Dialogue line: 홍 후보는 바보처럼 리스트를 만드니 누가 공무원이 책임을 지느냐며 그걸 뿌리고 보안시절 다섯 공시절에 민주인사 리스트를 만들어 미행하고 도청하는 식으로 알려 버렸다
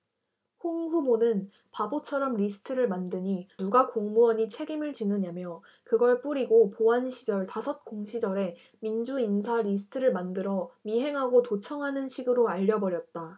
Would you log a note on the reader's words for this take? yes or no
no